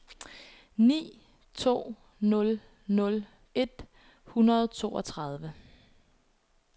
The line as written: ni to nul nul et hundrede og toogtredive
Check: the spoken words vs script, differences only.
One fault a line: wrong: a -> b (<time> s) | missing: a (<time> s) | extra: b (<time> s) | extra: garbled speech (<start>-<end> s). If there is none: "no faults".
no faults